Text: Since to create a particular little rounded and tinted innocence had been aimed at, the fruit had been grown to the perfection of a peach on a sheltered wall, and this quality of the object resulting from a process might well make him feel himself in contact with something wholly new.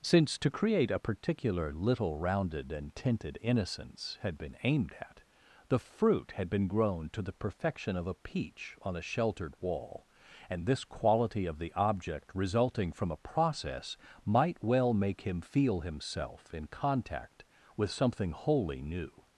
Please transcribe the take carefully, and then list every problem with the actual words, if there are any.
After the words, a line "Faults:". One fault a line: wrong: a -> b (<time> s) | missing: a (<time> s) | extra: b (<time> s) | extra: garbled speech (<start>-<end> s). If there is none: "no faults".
Since to create a particular little rounded and tinted innocence had been aimed at, the fruit had been grown to the perfection of a peach on a sheltered wall, and this quality of the object resulting from a process might well make him feel himself in contact with something wholly new.
Faults:
no faults